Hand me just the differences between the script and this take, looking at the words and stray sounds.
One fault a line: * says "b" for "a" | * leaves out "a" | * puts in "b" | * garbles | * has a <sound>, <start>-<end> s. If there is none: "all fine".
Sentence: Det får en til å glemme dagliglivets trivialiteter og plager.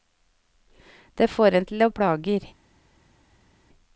* leaves out "glemme dagliglivets trivialiteter"